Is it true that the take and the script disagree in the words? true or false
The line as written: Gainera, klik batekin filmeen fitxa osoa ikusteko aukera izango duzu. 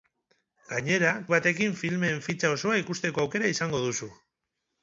true